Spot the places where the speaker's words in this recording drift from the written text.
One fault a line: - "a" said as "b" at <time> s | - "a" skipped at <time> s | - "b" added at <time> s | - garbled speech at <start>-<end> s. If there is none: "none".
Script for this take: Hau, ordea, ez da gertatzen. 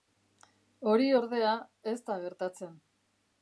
- "Hau" said as "Hori" at 0.9 s